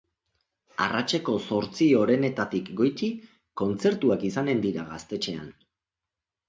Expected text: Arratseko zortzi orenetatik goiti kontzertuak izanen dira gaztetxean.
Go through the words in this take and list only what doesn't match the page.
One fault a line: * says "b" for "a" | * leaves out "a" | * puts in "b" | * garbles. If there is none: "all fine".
all fine